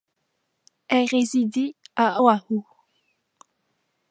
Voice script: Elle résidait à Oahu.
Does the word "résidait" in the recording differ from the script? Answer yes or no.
no